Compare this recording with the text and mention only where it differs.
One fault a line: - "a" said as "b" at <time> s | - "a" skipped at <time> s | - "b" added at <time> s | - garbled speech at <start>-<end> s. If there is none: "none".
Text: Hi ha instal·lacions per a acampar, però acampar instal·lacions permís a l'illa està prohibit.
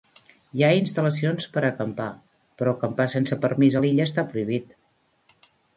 - "instal·lacions" said as "sense" at 3.2 s